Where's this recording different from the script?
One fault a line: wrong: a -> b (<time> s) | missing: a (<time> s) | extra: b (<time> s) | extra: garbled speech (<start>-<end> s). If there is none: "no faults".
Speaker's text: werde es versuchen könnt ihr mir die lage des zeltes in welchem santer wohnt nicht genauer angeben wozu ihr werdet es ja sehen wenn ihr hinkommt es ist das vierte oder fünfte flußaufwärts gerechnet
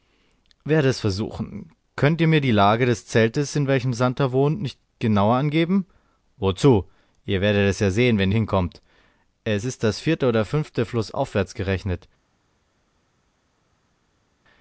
missing: ihr (8.3 s)